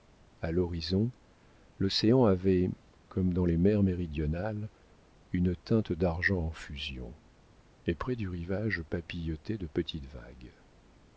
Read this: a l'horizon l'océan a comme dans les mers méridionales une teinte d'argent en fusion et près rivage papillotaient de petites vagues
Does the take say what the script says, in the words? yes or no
no